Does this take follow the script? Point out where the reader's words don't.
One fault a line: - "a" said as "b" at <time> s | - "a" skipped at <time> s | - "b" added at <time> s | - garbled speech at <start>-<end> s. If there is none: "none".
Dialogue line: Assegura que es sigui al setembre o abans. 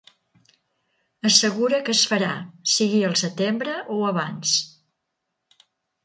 - "farà" added at 2.1 s